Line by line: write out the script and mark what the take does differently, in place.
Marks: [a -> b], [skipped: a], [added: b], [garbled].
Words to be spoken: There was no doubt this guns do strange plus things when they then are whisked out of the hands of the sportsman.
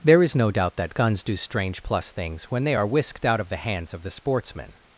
There [was -> is] no doubt [this -> that] guns do strange plus things when they [skipped: then] are whisked out of the hands of the sportsman.